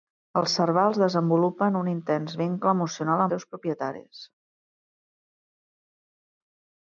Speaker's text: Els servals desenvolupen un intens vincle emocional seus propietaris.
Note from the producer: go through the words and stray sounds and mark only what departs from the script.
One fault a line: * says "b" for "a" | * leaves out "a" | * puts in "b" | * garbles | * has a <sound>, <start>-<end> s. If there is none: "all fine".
all fine